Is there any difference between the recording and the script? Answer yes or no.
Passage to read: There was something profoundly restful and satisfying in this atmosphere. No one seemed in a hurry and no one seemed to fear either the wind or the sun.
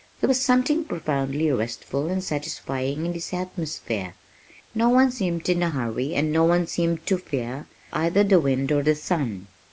no